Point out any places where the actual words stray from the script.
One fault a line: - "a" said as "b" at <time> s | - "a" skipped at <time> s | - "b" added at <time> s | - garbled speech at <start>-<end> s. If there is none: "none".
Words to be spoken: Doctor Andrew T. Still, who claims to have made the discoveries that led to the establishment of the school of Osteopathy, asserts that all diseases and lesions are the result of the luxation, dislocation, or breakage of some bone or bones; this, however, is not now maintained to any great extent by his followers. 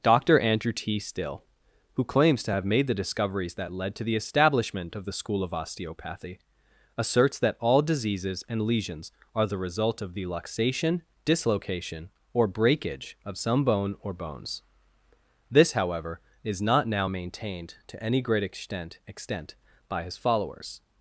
- "extent" added at 19.1 s